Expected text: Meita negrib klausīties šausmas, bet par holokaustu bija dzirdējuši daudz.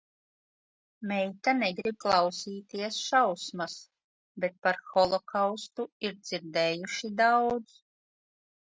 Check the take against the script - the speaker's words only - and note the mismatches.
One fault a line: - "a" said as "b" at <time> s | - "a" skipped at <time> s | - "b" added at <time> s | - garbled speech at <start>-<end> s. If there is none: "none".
- "bija" said as "ir" at 6.1 s